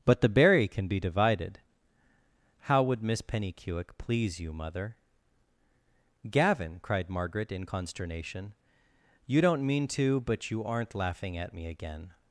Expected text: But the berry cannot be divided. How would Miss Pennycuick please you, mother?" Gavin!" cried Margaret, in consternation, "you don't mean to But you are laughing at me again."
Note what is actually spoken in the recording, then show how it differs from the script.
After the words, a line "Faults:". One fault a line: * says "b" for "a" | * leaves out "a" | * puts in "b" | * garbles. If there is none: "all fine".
But the berry can be divided. How would Miss Pennycuick please you, mother?" Gavin!" cried Margaret, in consternation, "you don't mean to But you aren't laughing at me again."
Faults:
* says "can" for "cannot"
* says "aren't" for "are"